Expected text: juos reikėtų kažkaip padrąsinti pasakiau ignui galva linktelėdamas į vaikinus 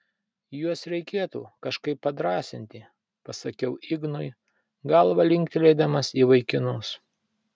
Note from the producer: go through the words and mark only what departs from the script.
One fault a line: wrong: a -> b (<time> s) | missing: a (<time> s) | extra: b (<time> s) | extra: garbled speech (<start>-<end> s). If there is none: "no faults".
no faults